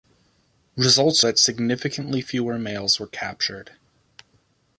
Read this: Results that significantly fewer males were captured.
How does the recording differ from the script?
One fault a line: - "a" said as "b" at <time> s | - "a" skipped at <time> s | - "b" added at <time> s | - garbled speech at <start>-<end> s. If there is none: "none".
none